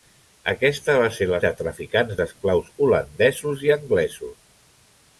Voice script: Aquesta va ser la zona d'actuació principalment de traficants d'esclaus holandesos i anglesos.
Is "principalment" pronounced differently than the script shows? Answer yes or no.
yes